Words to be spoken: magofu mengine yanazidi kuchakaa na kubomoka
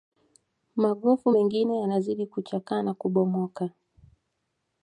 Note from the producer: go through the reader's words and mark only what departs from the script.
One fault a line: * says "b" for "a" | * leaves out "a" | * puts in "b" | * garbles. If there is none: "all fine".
all fine